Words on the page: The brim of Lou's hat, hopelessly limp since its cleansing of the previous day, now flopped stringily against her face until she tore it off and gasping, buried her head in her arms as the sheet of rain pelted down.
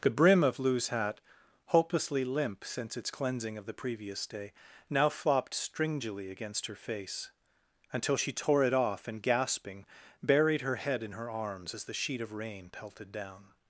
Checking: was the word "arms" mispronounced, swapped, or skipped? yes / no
no